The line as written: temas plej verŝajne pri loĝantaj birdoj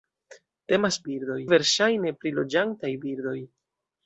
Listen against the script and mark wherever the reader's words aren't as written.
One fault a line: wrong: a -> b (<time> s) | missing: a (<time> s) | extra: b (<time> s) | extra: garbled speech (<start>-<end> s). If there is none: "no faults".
wrong: plej -> birdoj (1.1 s)